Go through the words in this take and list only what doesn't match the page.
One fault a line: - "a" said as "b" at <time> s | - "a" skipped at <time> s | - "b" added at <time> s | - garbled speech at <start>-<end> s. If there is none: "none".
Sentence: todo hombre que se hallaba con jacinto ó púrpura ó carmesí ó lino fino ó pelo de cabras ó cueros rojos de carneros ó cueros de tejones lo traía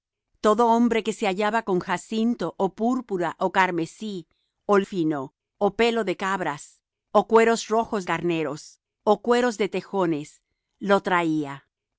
- "lino" skipped at 4.8 s
- "de" skipped at 8.1 s